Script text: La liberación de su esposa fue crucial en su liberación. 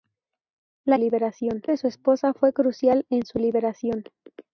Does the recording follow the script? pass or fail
pass